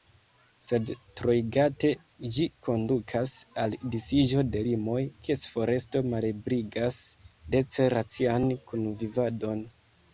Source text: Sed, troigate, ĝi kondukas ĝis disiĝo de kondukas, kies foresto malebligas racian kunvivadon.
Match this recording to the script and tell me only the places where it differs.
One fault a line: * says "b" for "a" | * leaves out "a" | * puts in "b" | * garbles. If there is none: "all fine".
* says "al" for "ĝis"
* says "limoj" for "kondukas"
* puts in "dece"